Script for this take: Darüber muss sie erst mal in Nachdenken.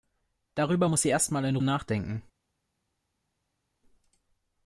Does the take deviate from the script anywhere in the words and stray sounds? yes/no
no